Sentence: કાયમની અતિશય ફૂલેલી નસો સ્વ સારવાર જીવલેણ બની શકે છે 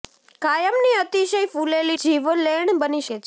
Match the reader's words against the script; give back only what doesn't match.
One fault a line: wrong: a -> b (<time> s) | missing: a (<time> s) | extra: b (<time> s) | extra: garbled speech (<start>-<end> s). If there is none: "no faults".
missing: નસો સ્વ સારવાર (2.0 s)
missing: શકે (3.1 s)